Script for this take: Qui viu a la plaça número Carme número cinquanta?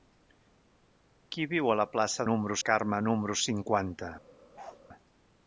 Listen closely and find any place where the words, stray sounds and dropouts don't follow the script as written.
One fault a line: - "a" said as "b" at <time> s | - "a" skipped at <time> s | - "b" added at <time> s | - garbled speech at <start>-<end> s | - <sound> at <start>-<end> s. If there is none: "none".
- bark at 4.5-4.8 s